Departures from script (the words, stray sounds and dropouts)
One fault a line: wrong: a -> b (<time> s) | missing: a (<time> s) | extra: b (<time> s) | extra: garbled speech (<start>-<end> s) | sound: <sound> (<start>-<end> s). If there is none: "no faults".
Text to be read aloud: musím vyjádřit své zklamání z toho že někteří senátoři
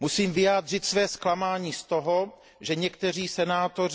no faults